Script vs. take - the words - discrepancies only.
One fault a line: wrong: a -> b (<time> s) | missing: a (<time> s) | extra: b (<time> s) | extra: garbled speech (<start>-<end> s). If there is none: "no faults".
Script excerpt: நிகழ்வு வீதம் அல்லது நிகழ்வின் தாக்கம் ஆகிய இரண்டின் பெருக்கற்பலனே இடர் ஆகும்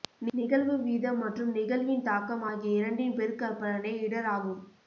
wrong: அல்லது -> மற்றும் (1.2 s)